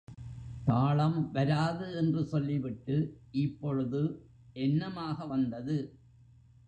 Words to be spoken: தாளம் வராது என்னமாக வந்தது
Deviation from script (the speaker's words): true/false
true